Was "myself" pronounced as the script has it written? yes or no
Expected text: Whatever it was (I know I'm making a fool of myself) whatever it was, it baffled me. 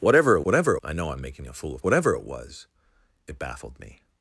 no